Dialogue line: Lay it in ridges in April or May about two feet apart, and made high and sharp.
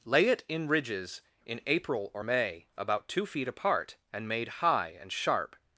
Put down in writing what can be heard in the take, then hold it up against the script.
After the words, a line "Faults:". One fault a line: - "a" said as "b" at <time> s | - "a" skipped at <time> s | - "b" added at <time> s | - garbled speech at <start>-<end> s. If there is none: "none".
Lay it in ridges in April or May about two feet apart, and made high and sharp.
Faults:
none